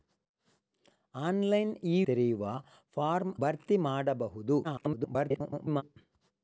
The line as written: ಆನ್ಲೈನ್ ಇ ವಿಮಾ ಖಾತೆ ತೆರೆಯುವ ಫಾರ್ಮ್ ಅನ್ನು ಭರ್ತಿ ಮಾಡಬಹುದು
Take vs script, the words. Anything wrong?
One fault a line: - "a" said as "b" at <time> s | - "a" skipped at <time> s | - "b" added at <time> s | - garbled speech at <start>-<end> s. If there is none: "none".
- "ವಿಮಾ ಖಾತೆ" skipped at 2.0 s
- "ಅನ್ನು" skipped at 3.3 s
- garbled speech at 4.6-5.8 s